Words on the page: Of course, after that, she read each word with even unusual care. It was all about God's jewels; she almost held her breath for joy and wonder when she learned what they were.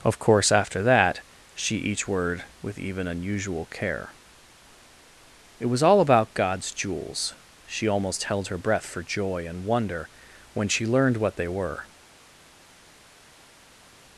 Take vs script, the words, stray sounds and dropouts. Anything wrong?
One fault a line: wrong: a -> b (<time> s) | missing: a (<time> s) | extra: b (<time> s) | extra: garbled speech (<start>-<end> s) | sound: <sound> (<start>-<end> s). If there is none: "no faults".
missing: read (1.8 s)